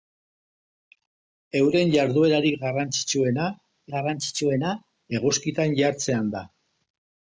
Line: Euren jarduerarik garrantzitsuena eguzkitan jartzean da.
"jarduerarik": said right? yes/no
yes